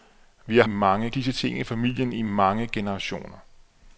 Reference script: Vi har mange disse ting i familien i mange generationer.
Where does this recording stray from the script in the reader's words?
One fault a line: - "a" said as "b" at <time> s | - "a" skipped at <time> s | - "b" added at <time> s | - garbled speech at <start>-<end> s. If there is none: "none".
none